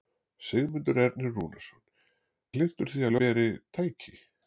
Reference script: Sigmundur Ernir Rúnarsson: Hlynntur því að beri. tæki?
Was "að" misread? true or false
false